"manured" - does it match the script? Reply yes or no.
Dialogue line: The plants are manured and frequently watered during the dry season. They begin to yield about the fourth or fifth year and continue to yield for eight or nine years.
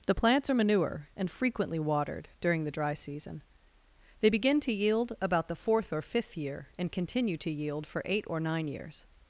no